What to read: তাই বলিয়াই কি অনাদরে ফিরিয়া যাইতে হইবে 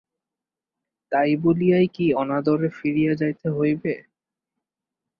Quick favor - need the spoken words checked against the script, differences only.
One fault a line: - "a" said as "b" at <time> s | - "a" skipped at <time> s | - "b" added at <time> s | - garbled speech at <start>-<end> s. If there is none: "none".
none